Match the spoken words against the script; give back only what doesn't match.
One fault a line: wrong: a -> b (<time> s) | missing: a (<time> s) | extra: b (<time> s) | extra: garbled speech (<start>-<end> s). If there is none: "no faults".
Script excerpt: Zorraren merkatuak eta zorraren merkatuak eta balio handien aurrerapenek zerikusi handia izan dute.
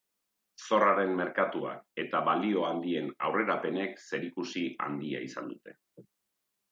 missing: zorraren merkatuak eta (2.2 s)